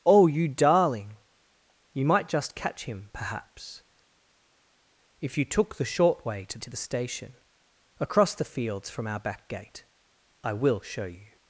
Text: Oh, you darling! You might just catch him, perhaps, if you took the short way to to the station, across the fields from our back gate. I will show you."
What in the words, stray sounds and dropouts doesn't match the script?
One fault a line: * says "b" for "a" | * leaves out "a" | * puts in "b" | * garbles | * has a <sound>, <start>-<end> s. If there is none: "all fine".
all fine